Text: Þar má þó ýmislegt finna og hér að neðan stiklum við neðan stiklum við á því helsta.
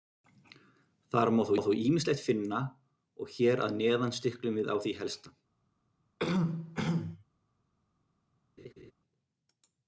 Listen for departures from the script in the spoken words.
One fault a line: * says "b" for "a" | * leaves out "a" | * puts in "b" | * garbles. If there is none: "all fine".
* leaves out "neðan stiklum við"